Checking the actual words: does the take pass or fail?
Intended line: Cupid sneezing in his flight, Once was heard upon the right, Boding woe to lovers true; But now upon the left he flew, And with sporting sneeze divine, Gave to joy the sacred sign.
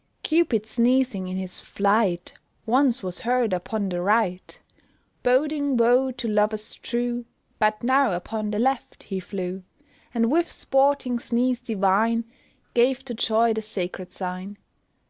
pass